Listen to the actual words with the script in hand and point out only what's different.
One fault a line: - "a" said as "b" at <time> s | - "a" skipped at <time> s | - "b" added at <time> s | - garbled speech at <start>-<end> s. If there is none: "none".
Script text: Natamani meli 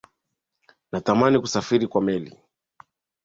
- "kusafiri kwa" added at 1.4 s